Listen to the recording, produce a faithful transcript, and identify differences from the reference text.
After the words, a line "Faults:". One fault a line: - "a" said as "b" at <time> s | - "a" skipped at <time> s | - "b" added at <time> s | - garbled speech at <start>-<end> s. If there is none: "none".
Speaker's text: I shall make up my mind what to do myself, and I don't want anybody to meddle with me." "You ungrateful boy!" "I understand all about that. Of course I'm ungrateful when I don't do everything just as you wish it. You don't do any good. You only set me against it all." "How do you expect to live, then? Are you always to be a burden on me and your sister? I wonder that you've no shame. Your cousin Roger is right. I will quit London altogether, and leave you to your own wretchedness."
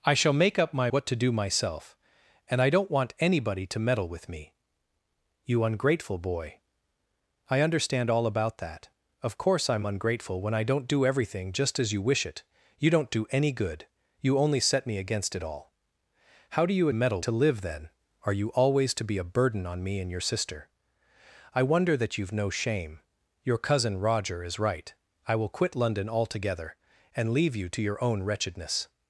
I shall make up my what to do myself, and I don't want anybody to meddle with me." "You ungrateful boy!" "I understand all about that. Of course I'm ungrateful when I don't do everything just as you wish it. You don't do any good. You only set me against it all." "How do you meddle to live, then? Are you always to be a burden on me and your sister? I wonder that you've no shame. Your cousin Roger is right. I will quit London altogether, and leave you to your own wretchedness."
Faults:
- "mind" skipped at 0.9 s
- "expect" said as "meddle" at 16.9 s